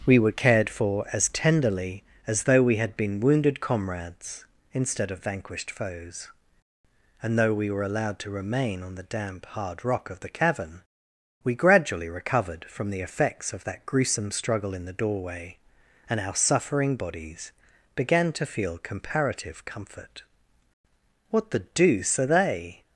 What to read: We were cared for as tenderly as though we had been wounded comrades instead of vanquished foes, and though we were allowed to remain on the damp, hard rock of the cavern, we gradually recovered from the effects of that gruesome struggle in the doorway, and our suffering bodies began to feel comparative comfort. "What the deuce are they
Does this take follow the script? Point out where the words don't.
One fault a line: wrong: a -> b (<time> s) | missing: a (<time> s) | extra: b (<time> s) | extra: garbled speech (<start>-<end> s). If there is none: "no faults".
no faults